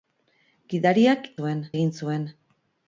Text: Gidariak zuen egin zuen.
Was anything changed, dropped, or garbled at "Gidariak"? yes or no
no